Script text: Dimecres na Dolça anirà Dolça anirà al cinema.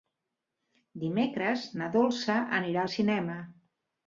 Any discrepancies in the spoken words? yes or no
yes